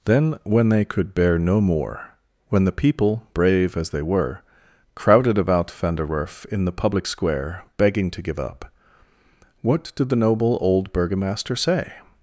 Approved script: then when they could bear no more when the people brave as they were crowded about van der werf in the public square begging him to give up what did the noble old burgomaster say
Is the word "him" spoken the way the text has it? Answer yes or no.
no